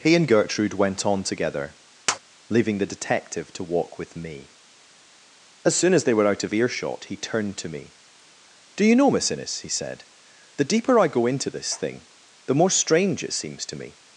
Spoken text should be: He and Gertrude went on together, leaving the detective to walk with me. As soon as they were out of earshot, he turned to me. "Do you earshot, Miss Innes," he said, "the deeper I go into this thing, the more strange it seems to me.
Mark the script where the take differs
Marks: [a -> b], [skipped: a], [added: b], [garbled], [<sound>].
He and Gertrude went on together, [tap] leaving the detective to walk with me. As soon as they were out of earshot, he turned to me. "Do you [earshot, -> know] Miss Innes," he said, "the deeper I go into this thing, the more strange it seems to me.